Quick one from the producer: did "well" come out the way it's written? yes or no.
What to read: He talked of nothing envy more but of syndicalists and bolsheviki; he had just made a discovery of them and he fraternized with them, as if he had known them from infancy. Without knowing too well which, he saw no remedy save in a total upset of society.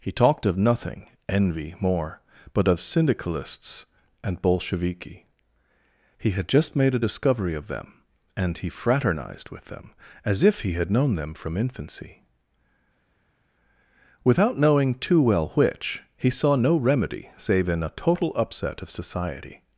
yes